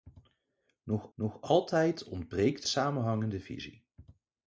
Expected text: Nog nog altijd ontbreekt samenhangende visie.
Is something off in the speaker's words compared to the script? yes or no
no